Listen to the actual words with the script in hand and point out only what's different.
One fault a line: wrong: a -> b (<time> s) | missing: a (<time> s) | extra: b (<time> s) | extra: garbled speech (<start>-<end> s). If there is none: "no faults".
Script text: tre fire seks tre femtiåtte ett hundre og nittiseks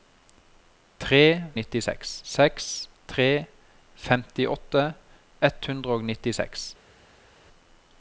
wrong: fire -> nittiseks (1.6 s)